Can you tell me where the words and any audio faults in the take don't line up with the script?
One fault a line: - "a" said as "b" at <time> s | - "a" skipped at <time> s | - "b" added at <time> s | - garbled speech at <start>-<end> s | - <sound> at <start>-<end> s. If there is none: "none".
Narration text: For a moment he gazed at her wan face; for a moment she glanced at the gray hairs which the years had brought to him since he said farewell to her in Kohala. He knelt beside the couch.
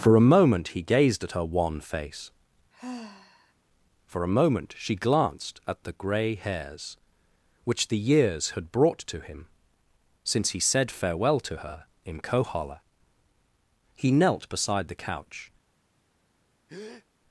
- sigh at 2.7-3.5 s
- breath at 16.7-17.1 s